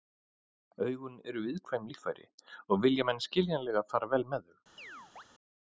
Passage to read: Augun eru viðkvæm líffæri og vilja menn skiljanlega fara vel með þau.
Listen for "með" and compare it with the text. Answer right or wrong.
right